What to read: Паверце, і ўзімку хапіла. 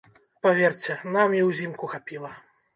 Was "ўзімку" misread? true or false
false